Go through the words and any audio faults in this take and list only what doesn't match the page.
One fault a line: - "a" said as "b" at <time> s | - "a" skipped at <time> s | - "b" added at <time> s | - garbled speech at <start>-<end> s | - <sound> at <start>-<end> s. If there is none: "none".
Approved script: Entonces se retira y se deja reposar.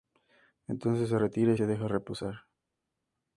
none